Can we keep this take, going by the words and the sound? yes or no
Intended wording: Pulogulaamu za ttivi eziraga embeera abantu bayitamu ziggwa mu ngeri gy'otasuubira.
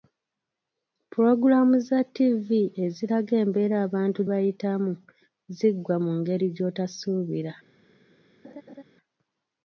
no